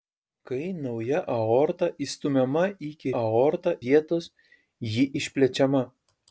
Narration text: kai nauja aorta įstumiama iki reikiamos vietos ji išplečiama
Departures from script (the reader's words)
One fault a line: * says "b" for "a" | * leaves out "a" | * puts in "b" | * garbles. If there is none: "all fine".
* says "aorta" for "reikiamos"